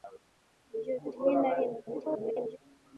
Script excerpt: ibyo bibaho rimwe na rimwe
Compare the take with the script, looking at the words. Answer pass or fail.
fail